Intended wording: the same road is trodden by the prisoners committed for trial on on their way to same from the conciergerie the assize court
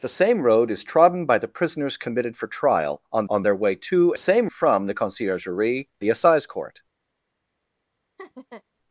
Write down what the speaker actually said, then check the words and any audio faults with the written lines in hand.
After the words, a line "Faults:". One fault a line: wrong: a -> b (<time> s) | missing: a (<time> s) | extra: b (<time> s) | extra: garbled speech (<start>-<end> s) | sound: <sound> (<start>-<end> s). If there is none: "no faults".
the same road is trodden by the prisoners committed for trial on on their way to same from the conciergerie the assize court
Faults:
sound: laugh (8.2-8.6 s)